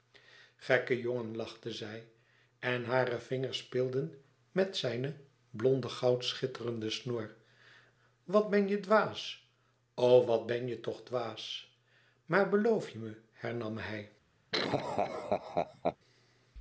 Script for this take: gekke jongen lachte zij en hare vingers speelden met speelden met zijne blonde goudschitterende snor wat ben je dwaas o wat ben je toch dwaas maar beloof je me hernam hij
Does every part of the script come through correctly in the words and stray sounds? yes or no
no